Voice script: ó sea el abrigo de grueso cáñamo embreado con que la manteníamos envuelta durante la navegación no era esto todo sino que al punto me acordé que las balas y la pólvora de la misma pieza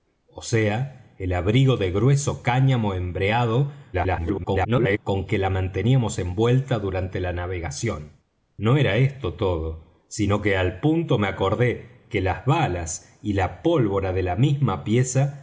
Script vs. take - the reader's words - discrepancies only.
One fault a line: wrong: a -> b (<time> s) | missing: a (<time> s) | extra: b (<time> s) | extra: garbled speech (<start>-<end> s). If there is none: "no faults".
extra: garbled speech (3.9-5.0 s)